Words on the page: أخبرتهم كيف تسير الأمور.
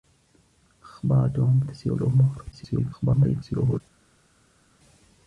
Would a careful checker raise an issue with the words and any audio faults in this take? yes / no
yes